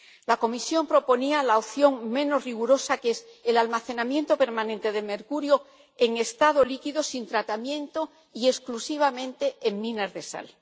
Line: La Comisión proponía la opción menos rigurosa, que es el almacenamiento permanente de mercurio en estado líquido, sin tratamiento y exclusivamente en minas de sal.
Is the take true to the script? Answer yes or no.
yes